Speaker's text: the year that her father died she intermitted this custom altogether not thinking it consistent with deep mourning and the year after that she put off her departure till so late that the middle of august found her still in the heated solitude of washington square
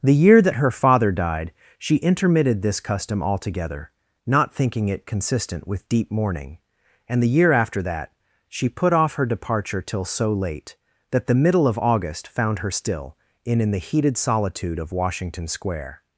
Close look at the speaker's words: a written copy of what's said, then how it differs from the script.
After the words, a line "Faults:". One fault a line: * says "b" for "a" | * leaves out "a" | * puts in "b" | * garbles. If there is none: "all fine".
the year that her father died she intermitted this custom altogether not thinking it consistent with deep mourning and the year after that she put off her departure till so late that the middle of august found her still in in the heated solitude of washington square
Faults:
* puts in "in"